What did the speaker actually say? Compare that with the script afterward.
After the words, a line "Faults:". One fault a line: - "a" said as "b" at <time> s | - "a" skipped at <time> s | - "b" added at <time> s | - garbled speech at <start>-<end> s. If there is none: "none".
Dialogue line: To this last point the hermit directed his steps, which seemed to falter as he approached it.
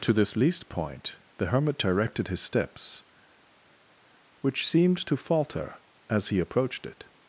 To this least point the hermit directed his steps, which seemed to falter as he approached it.
Faults:
- "last" said as "least" at 0.3 s